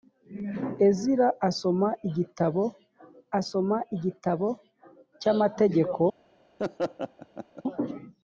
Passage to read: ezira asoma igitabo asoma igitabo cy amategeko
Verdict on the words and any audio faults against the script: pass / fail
fail